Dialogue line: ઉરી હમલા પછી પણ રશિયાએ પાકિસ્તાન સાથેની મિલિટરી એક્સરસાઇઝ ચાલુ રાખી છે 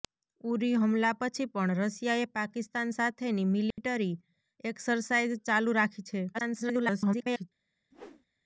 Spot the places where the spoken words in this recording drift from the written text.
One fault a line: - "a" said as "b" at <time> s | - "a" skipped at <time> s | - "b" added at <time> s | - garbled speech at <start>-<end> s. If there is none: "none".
- garbled speech at 6.3-7.5 s